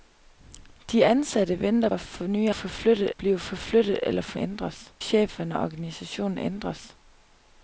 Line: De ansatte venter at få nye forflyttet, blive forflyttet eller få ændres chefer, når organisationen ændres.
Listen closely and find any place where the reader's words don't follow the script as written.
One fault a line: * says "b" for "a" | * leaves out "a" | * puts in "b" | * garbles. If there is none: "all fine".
all fine